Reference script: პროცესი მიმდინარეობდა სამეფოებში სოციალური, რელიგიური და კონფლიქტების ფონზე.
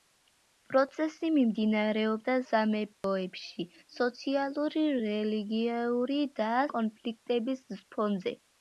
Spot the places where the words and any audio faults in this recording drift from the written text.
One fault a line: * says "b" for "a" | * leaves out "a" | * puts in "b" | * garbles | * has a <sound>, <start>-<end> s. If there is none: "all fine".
* has a dropout, 2.9-3.0 s